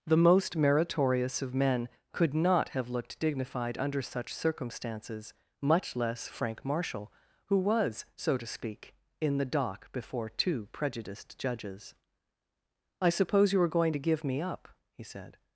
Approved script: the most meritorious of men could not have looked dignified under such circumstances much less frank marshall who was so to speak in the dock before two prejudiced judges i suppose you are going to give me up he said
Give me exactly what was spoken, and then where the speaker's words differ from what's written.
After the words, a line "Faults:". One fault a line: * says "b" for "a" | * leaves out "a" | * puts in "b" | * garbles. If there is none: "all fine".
the most meritorious of men could not have looked dignified under such circumstances much less frank marshall who was so to speak in the dock before two prejudiced judges i suppose you are going to give me up he said
Faults:
all fine